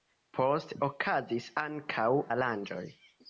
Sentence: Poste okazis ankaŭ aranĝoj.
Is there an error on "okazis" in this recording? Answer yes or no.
no